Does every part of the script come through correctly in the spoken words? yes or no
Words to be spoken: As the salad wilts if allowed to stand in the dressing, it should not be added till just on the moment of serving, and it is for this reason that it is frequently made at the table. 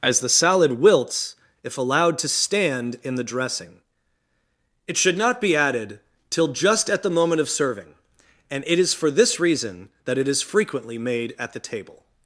no